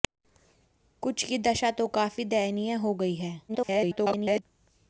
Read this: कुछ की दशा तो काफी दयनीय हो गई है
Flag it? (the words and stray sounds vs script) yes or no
yes